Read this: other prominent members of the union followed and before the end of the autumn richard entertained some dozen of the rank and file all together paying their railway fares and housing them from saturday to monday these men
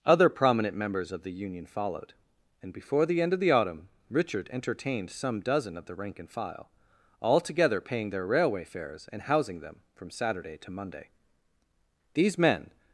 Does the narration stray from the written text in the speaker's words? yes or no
no